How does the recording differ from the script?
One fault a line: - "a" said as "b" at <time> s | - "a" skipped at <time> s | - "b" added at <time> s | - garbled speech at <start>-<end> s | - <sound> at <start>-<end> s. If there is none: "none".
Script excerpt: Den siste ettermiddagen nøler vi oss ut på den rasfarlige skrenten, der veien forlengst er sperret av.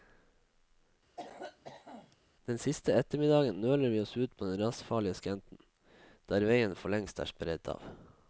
- cough at 1.2-2.2 s